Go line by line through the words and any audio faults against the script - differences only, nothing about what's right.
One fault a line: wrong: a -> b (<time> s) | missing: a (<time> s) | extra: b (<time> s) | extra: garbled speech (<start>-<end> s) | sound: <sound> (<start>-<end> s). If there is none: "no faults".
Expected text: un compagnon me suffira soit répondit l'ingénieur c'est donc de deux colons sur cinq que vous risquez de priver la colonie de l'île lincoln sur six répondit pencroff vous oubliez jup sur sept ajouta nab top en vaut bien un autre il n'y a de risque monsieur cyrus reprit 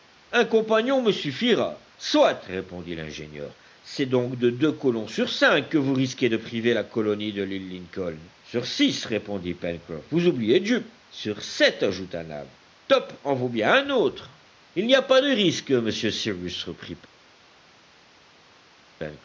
extra: pas (15.0 s)